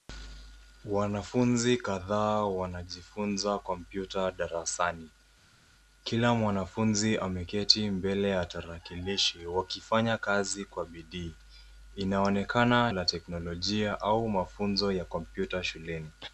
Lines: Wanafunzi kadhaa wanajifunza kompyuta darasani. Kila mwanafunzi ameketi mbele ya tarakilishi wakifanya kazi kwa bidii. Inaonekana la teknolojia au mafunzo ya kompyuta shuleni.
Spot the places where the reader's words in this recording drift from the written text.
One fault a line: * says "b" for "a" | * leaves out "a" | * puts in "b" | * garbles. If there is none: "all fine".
all fine